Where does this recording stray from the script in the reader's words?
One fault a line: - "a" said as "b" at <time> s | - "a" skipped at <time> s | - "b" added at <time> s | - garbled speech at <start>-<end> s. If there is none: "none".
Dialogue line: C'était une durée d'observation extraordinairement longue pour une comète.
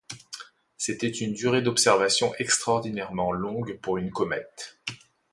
none